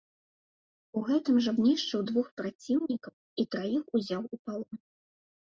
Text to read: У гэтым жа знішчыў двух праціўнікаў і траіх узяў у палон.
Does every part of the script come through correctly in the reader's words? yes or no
yes